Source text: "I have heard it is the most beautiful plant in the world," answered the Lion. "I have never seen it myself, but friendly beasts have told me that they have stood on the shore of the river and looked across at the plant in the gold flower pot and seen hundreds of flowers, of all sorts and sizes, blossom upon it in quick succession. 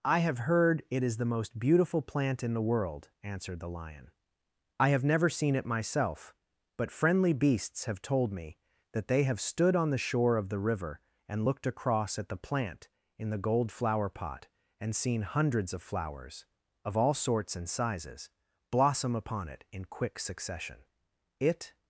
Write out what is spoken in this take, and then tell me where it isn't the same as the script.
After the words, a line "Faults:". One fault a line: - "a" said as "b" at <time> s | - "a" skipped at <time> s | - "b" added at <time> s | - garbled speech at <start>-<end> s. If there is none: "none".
"I have heard it is the most beautiful plant in the world," answered the Lion. "I have never seen it myself, but friendly beasts have told me that they have stood on the shore of the river and looked across at the plant in the gold flower pot and seen hundreds of flowers, of all sorts and sizes, blossom upon it in quick succession. It
Faults:
- "It" added at 21.4 s